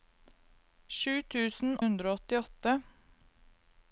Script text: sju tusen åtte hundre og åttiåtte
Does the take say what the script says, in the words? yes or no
no